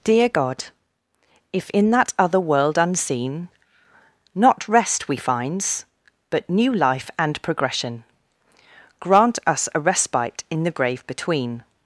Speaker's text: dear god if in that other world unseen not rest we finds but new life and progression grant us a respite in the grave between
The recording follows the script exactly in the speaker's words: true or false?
true